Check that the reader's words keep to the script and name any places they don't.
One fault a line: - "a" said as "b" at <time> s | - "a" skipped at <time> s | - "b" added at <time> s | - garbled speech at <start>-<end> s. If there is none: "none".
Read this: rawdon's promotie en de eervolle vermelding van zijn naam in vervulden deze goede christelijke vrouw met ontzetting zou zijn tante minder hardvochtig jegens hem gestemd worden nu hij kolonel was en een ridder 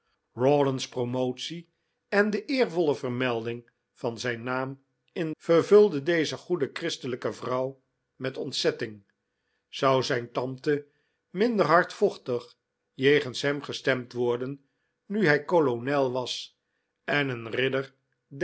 none